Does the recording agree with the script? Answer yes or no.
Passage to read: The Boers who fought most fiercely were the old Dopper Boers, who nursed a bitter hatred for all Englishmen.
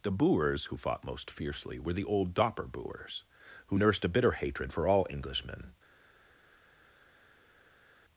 yes